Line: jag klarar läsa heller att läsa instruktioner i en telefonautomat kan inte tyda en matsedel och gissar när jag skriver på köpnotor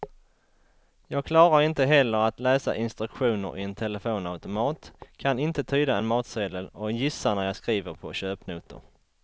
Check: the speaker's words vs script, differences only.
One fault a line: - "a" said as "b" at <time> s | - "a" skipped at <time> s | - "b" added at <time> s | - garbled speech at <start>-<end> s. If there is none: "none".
- "läsa" said as "inte" at 1.6 s